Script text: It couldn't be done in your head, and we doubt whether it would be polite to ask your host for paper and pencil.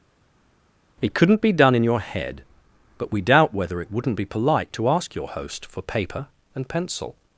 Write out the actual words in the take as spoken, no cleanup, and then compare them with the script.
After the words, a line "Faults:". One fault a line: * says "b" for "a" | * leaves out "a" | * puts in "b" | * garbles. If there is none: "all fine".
It couldn't be done in your head, but we doubt whether it wouldn't be polite to ask your host for paper and pencil.
Faults:
* says "but" for "and"
* says "wouldn't" for "would"